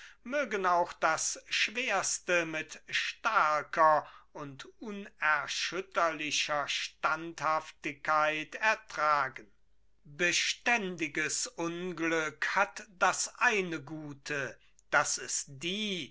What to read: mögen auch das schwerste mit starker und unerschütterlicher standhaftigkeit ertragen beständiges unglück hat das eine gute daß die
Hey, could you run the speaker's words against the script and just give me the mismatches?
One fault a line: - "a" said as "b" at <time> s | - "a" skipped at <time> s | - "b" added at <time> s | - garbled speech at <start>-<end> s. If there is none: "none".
- "es" added at 15.2 s